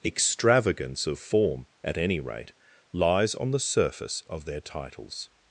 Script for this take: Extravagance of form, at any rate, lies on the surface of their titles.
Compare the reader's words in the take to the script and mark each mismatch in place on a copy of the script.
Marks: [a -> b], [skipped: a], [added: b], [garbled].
Extravagance of form, at any rate, lies on the surface of their titles.